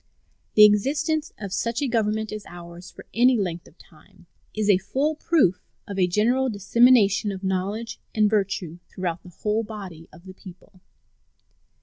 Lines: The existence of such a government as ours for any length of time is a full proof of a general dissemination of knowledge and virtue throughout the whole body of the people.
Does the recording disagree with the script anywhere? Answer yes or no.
no